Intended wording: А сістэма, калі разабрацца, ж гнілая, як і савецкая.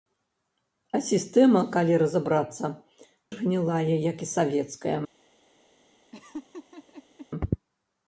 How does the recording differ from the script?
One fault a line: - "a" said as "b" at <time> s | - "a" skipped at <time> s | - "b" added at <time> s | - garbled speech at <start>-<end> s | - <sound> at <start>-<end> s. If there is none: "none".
- laugh at 6.1-7.3 s